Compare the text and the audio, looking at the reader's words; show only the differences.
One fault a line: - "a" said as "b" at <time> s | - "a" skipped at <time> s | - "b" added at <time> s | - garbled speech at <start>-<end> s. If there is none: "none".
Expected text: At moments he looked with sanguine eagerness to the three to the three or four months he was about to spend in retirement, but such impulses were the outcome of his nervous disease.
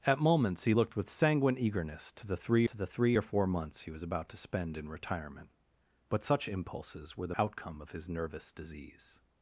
none